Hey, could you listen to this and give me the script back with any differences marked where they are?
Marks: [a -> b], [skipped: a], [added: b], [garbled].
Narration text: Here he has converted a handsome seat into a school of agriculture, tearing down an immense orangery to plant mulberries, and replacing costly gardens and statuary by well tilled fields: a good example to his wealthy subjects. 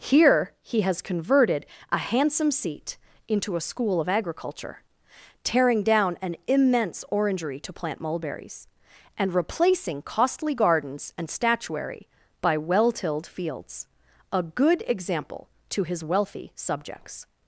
Here he has converted a handsome seat into a school of agriculture, tearing down an immense orangery to plant mulberries, and replacing costly gardens and statuary by well tilled fields: a good example to his wealthy subjects.